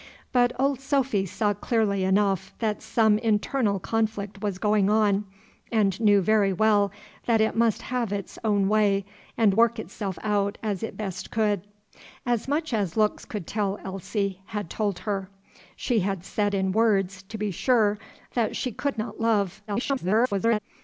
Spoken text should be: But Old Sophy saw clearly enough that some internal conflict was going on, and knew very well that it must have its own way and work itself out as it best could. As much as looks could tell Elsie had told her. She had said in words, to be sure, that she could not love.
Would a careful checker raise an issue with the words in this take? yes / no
yes